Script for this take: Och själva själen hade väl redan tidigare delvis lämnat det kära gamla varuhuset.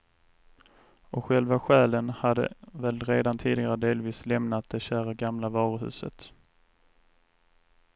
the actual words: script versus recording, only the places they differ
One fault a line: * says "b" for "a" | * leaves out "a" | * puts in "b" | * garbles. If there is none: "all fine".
all fine